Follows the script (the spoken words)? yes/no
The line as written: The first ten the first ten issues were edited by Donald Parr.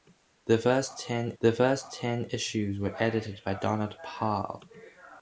yes